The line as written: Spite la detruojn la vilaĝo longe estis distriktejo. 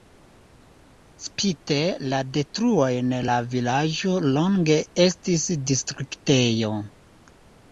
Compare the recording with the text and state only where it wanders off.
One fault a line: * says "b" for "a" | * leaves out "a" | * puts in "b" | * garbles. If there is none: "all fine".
all fine